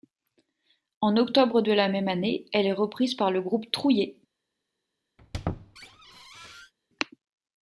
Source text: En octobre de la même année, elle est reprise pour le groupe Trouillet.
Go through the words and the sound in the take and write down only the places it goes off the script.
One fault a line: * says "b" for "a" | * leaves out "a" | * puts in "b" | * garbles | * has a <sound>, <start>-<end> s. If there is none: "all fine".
* says "par" for "pour"
* has a squeak, 5.2-6.7 s